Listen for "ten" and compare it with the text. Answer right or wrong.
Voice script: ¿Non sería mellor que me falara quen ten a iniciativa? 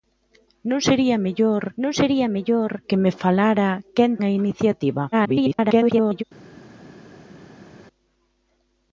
wrong